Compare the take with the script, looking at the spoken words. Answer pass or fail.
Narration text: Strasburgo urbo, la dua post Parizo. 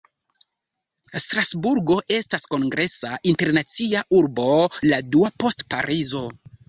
fail